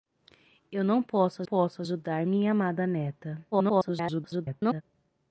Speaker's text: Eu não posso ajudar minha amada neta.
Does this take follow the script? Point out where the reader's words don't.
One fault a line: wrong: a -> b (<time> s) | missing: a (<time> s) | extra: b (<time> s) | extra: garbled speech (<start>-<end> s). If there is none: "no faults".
extra: posso (1.4 s)
extra: garbled speech (3.5-4.8 s)